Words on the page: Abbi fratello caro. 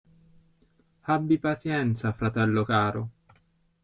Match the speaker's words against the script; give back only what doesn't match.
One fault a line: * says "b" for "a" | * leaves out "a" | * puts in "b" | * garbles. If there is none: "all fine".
* puts in "pazienza"